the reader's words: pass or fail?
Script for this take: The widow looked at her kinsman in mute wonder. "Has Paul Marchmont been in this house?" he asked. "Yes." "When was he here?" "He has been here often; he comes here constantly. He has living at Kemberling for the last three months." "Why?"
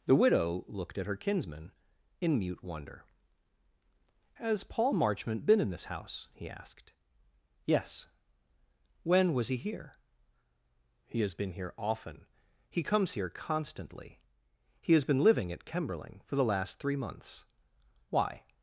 fail